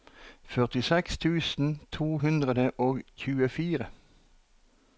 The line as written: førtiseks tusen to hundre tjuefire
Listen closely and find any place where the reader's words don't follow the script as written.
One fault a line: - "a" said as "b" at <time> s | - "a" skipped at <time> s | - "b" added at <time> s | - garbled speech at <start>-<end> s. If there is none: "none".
- "og" added at 2.8 s